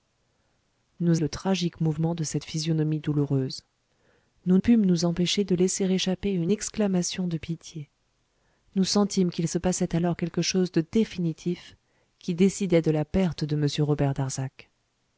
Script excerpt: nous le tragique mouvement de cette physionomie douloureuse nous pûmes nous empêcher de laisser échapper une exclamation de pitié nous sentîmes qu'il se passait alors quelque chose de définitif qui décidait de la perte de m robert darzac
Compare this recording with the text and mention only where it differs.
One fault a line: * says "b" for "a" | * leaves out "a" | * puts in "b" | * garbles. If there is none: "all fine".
all fine